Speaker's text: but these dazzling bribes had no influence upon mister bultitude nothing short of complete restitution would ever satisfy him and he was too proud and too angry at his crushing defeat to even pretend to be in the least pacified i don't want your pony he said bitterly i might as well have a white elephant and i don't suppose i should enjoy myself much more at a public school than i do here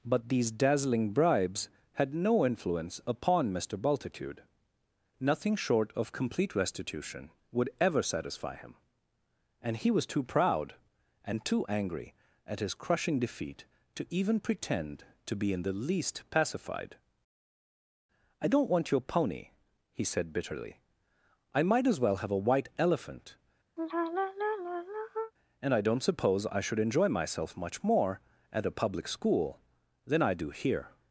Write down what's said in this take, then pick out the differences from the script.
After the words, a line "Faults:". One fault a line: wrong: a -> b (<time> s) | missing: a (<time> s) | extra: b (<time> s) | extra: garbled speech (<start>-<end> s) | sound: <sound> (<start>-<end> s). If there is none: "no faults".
but these dazzling bribes had no influence upon mister bultitude nothing short of complete restitution would ever satisfy him and he was too proud and too angry at his crushing defeat to even pretend to be in the least pacified i don't want your pony he said bitterly i might as well have a white elephant and i don't suppose i should enjoy myself much more at a public school than i do here
Faults:
sound: sigh (23.8-25.3 s)